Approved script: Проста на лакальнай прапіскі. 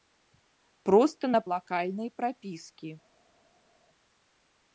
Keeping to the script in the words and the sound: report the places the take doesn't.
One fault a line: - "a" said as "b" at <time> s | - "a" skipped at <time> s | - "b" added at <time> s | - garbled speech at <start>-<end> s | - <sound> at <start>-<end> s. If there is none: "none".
none